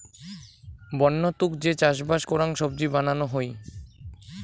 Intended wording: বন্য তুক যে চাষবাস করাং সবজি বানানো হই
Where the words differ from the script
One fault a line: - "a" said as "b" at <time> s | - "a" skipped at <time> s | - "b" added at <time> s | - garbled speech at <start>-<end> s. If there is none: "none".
none